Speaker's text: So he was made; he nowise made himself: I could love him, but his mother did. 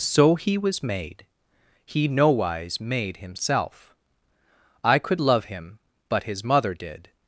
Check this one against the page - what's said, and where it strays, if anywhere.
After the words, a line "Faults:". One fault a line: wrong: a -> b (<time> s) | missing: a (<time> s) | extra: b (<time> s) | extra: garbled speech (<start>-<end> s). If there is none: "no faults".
So he was made; he nowise made himself: I could love him, but his mother did.
Faults:
no faults